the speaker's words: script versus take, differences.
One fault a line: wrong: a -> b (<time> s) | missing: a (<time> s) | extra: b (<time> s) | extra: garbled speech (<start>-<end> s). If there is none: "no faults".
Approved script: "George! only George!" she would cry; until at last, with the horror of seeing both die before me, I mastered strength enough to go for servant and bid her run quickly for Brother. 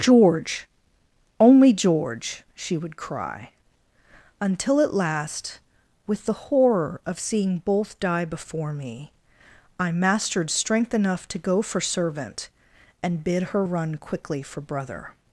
no faults